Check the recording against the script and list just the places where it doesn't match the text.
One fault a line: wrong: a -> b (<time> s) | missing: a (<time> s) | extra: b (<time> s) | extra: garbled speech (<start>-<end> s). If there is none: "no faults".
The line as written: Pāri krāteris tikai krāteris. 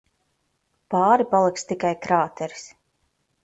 wrong: krāteris -> paliks (1.4 s)